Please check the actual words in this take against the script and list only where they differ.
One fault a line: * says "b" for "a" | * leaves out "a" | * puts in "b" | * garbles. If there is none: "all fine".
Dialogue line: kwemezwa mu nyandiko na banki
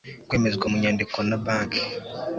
all fine